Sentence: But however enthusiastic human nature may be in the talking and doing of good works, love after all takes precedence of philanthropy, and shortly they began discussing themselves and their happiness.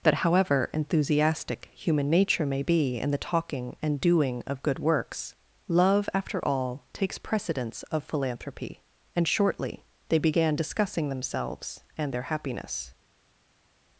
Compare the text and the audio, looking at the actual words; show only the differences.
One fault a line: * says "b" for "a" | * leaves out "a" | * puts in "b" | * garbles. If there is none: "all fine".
* says "That" for "But"